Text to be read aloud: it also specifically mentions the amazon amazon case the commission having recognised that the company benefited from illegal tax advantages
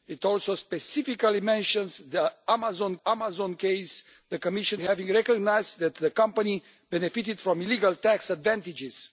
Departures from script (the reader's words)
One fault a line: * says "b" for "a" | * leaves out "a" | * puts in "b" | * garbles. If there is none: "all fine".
all fine